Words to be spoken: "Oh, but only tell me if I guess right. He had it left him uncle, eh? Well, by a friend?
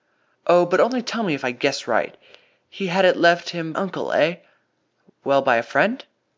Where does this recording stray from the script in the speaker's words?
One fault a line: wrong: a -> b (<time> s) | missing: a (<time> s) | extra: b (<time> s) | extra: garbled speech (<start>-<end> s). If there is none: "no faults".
no faults